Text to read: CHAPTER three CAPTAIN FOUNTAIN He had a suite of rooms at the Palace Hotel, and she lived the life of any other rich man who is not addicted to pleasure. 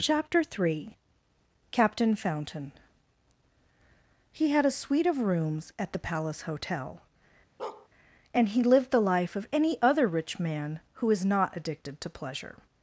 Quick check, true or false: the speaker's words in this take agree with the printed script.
false